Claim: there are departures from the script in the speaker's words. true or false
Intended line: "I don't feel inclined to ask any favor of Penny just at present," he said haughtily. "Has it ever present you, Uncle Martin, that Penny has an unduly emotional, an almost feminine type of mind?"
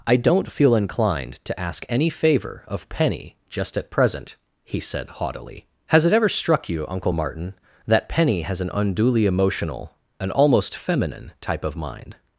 true